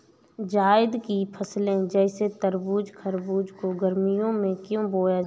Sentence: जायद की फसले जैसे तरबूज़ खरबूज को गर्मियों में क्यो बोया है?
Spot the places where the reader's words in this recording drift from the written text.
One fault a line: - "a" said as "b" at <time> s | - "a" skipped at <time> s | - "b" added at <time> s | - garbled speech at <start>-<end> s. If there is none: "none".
none